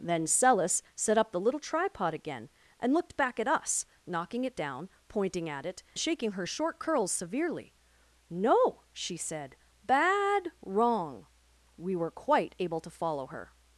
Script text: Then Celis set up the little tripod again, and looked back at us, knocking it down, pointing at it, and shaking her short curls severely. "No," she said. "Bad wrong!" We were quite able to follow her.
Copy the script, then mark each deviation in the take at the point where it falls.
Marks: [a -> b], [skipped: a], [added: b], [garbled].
Then Celis set up the little tripod again, and looked back at us, knocking it down, pointing at it, [skipped: and] shaking her short curls severely. "No," she said. "Bad wrong!" We were quite able to follow her.